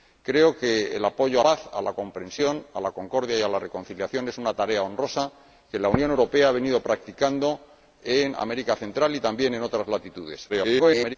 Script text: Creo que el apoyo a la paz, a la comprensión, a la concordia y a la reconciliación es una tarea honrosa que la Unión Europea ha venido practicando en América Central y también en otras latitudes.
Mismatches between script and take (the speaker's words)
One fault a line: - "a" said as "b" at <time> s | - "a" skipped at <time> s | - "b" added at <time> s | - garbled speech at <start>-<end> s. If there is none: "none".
- "la" skipped at 1.4 s
- garbled speech at 10.5-11.2 s